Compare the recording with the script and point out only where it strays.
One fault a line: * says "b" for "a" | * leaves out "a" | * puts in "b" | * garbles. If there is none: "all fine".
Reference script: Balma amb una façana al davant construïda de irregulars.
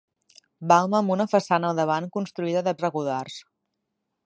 all fine